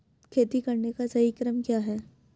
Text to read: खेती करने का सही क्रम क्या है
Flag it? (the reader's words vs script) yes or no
no